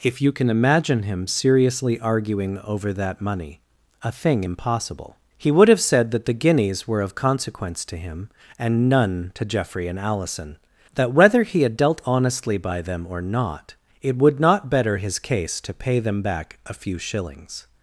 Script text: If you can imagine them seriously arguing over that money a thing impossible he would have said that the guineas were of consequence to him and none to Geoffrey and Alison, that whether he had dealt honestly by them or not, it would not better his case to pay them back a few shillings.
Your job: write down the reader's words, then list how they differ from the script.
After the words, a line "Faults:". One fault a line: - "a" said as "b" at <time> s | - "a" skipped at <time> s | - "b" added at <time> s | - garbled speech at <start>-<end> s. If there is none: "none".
If you can imagine him seriously arguing over that money a thing impossible he would have said that the guineas were of consequence to him and none to Geoffrey and Alison, that whether he had dealt honestly by them or not, it would not better his case to pay them back a few shillings.
Faults:
- "them" said as "him" at 1.0 s